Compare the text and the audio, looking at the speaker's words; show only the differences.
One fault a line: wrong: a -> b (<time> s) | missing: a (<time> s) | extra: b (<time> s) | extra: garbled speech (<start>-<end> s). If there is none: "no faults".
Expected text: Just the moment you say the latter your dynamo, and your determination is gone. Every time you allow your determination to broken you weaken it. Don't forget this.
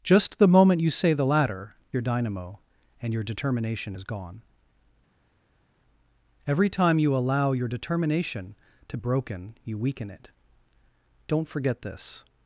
no faults